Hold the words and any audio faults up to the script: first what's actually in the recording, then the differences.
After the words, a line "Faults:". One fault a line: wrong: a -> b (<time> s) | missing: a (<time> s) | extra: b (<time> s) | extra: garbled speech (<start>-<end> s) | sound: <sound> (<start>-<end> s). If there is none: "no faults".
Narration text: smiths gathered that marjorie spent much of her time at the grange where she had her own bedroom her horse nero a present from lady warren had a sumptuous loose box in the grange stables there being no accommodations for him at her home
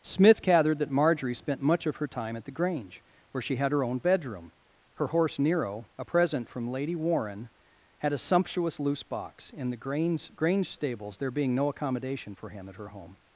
smith gathered that marjorie spent much of her time at the grange where she had her own bedroom her horse nero a present from lady warren had a sumptuous loose box in the grange stables there being no accommodation for him at her home
Faults:
wrong: smiths -> smith (0.0 s)
wrong: accommodations -> accommodation (11.7 s)